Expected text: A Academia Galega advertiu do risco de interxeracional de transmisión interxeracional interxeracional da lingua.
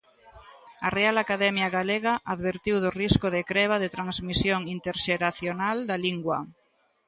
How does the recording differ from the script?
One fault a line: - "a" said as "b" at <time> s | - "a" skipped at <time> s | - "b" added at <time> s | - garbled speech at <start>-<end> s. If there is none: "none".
- "Real" added at 1.0 s
- "interxeracional" said as "creba" at 3.5 s
- "interxeracional" skipped at 5.8 s